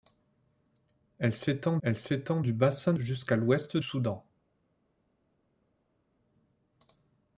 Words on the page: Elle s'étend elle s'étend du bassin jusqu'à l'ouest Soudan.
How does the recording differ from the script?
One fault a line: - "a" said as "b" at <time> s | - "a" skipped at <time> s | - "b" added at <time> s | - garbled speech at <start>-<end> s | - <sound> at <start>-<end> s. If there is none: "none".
none